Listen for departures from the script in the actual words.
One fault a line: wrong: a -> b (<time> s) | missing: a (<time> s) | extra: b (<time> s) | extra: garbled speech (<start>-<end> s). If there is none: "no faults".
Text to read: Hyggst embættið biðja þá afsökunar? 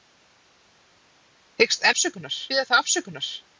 wrong: embættið -> afsökunar (1.9 s)